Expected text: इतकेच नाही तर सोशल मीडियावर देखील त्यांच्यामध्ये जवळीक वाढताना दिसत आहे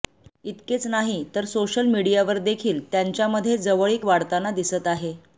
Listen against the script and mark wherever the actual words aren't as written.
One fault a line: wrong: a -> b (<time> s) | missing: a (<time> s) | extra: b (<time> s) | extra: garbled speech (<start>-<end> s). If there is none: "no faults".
no faults